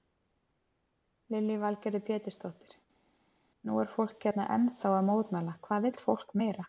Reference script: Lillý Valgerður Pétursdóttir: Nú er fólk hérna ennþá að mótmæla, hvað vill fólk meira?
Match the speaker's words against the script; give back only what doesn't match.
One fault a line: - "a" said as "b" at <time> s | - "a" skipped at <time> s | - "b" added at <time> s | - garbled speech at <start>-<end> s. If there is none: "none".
none